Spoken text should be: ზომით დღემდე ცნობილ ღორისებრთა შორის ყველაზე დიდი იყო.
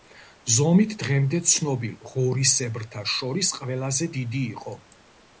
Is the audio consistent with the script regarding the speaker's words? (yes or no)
yes